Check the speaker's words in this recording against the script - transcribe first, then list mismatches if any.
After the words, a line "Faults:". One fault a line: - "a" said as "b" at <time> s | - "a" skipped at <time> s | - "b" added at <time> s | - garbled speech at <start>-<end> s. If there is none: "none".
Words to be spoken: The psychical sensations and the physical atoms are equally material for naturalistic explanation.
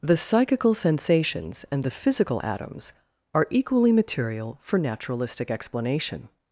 The psychical sensations and the physical atoms are equally material for naturalistic explanation.
Faults:
none